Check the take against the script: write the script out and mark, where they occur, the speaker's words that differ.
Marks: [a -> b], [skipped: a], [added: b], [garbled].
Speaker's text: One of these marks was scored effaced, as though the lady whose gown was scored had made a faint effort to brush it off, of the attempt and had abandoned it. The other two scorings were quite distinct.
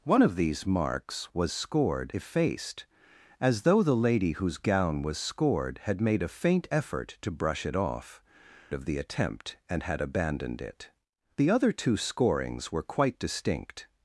One of these marks was scored effaced, as though the lady whose gown was scored had made a faint effort to brush it off, of the attempt and had abandoned it. The other two scorings were quite distinct.